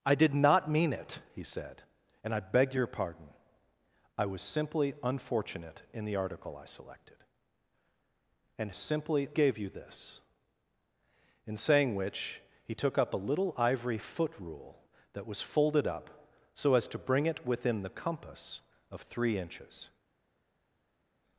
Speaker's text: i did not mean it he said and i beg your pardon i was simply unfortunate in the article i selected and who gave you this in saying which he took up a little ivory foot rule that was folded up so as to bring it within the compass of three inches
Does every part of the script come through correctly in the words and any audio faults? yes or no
no